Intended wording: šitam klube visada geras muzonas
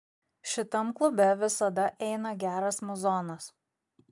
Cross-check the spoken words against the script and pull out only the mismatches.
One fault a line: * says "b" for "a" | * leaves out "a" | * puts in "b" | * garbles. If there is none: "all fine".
* puts in "eina"